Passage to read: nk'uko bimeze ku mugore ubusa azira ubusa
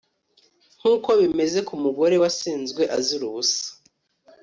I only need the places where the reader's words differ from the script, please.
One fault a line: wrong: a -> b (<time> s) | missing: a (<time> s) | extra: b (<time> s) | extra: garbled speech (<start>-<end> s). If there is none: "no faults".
wrong: ubusa -> wasenzwe (2.2 s)